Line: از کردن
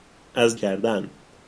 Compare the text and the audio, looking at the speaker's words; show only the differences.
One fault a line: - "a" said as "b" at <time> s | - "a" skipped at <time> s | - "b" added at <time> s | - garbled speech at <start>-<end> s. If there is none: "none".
none